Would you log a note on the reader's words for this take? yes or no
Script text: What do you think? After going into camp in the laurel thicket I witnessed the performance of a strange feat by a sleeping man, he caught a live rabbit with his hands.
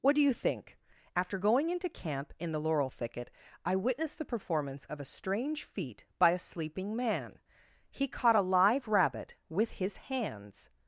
no